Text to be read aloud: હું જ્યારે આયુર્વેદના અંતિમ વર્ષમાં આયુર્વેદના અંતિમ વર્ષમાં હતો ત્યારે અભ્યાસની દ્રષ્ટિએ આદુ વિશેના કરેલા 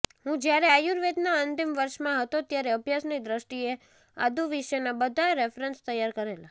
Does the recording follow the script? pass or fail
fail